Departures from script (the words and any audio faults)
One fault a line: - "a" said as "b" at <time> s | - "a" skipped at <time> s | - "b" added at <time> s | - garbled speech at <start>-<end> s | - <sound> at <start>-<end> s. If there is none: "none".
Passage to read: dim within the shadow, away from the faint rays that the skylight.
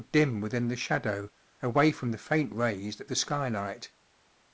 none